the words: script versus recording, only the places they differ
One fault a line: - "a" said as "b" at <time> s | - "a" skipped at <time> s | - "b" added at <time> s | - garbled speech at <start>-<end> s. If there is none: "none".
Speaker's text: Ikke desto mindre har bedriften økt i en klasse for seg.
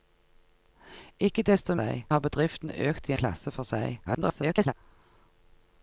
- "mindre" said as "seg" at 1.7 s
- "en" skipped at 3.1 s
- garbled speech at 4.1-4.7 s